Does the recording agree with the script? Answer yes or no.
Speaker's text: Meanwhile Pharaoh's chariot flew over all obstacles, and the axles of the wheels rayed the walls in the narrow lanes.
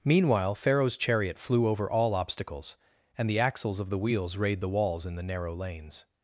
yes